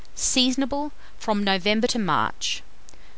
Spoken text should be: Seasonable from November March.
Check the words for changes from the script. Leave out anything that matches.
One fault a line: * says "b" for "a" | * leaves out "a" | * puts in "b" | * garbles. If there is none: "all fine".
* puts in "to"